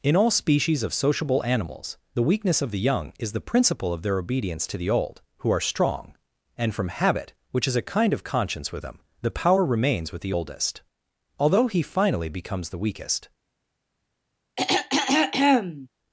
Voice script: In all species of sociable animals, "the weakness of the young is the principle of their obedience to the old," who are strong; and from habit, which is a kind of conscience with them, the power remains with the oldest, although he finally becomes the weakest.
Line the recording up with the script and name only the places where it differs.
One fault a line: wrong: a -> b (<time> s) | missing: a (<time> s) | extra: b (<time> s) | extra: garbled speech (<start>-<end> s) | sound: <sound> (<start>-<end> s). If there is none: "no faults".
sound: throat clearing (14.6-15.9 s)